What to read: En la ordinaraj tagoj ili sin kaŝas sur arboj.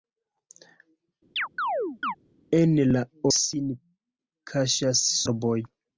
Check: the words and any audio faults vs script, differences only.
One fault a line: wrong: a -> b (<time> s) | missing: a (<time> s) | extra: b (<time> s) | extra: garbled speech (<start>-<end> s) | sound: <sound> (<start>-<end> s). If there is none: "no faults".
sound: chirp (1.4-2.2 s)
missing: ordinaraj tagoj ili (3.0 s)
missing: sur (5.1 s)